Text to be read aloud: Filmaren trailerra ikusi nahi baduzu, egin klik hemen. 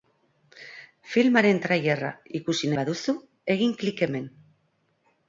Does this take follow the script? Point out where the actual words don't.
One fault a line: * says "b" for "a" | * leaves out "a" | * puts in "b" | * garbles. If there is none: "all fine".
* leaves out "nahi"